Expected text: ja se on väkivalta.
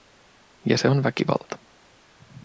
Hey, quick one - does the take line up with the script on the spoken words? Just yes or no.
yes